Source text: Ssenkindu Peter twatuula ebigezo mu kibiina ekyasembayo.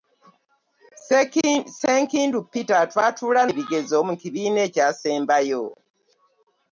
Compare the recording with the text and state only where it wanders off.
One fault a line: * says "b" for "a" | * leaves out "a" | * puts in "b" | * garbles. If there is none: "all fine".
all fine